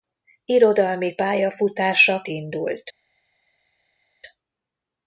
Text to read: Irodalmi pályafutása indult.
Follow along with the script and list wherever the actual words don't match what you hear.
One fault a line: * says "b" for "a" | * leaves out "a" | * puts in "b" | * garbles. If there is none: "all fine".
all fine